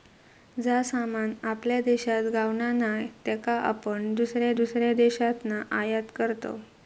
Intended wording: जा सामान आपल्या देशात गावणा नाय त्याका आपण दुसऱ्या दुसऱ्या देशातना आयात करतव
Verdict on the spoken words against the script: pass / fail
pass